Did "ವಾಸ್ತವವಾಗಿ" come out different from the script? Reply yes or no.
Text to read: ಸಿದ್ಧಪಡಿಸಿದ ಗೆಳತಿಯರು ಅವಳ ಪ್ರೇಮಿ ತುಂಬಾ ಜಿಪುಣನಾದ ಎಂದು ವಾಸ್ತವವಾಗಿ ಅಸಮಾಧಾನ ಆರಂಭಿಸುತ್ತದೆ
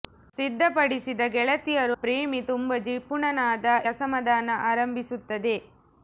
yes